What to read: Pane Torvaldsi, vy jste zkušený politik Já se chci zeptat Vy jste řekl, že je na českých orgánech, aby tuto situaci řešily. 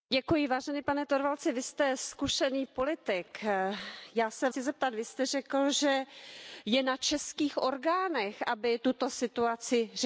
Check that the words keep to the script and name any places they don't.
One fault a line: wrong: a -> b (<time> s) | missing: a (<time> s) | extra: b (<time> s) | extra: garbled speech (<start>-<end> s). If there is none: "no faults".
no faults